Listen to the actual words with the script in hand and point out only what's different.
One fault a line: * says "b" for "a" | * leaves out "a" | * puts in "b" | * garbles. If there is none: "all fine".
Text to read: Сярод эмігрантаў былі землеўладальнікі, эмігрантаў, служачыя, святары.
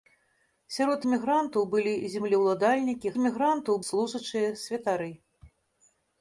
all fine